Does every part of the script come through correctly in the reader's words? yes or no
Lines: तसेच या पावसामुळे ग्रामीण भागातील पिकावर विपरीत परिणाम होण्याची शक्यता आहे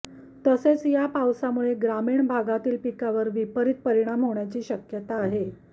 yes